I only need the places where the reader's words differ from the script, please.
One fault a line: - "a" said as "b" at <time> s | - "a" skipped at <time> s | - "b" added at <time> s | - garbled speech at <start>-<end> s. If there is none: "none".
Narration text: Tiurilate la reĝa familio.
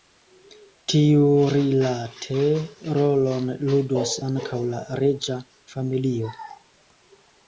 - "rolon ludos ankaŭ" added at 3.0 s